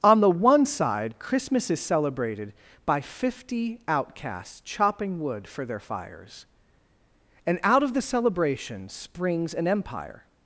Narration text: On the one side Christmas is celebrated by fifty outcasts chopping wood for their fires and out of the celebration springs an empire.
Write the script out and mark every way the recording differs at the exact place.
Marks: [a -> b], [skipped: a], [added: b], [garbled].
On the one side Christmas is celebrated by fifty outcasts chopping wood for their fires and out of the celebration springs an empire.